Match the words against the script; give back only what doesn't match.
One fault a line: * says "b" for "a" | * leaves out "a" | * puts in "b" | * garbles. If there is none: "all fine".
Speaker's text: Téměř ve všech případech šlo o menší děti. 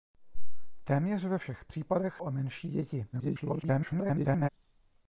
* leaves out "šlo"
* garbles